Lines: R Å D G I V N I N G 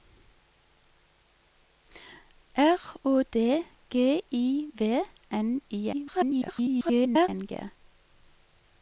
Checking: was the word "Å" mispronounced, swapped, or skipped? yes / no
no